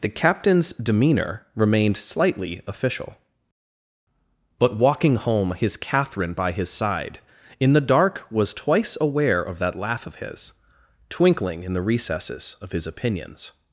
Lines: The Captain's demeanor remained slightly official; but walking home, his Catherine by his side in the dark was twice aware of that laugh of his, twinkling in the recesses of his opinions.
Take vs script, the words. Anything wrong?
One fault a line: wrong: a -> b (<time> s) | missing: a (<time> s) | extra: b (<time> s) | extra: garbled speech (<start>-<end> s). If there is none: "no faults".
no faults